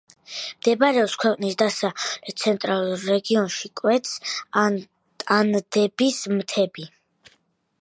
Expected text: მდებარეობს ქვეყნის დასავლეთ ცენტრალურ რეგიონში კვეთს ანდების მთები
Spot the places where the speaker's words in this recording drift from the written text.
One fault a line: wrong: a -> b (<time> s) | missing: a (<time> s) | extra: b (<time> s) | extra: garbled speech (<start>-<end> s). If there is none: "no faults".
no faults